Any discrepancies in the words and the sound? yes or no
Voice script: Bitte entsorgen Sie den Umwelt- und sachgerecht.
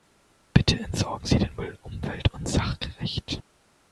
yes